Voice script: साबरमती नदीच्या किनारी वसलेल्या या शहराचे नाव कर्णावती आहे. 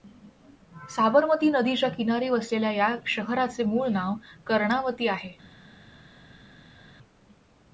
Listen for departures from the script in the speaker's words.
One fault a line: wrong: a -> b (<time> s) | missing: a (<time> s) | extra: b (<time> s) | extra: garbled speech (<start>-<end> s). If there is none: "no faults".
extra: मूळ (3.6 s)